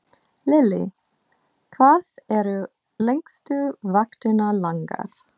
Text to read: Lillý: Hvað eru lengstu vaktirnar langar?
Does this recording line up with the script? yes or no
yes